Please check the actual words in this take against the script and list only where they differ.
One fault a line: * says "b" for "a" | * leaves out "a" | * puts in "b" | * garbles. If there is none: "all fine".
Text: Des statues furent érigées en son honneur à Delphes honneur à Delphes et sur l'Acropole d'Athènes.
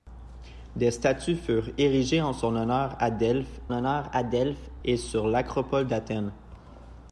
all fine